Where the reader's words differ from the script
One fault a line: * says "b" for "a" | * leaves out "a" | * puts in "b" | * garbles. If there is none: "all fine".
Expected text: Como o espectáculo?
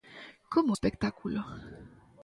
all fine